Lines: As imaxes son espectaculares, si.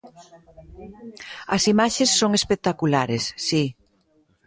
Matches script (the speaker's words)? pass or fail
pass